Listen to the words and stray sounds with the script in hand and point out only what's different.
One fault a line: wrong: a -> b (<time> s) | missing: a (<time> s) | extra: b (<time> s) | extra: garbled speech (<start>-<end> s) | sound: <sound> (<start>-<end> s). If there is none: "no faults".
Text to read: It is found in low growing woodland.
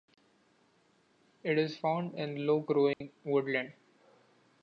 sound: dropout (2.9-3.0 s)